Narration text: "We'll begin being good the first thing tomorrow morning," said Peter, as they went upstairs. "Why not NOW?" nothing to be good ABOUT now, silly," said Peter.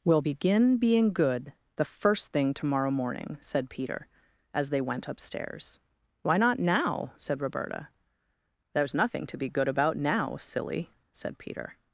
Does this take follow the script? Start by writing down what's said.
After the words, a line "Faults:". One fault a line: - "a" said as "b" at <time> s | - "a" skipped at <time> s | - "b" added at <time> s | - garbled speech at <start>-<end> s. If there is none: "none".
"We'll begin being good the first thing tomorrow morning," said Peter, as they went upstairs. "Why not NOW?" said Roberta. "There's nothing to be good ABOUT now, silly," said Peter.
Faults:
- "said Roberta There's" added at 7.2 s